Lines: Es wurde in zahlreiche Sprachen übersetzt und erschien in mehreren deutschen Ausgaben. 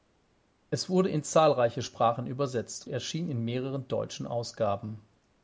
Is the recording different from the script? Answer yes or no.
yes